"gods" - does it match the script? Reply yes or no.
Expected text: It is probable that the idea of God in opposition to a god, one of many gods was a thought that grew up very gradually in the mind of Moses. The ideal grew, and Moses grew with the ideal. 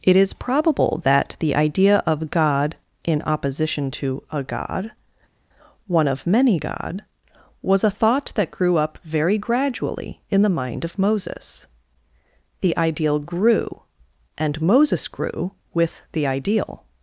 no